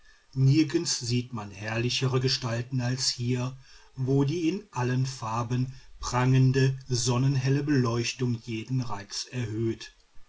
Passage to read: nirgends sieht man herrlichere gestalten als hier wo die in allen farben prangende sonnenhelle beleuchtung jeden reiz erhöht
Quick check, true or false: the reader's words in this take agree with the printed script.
true